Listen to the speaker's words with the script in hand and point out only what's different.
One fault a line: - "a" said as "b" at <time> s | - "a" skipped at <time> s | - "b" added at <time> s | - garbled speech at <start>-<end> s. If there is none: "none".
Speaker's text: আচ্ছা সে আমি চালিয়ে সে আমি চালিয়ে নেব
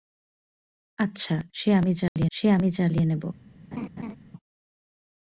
none